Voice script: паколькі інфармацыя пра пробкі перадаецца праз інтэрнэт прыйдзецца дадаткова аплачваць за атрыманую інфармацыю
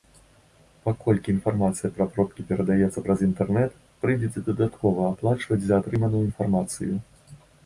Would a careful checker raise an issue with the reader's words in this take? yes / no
no